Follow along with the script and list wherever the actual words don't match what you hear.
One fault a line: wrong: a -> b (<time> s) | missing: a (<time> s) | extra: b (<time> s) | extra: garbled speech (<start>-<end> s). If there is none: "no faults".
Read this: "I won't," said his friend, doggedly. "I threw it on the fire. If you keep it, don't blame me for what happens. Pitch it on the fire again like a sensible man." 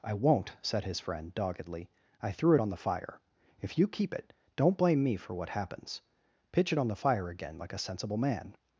no faults